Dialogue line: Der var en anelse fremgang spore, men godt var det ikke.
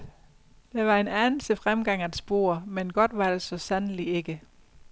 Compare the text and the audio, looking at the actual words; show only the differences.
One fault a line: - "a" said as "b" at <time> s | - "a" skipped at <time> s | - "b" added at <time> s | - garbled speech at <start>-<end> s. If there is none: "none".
- "at" added at 2.0 s
- "så sandelig" added at 3.4 s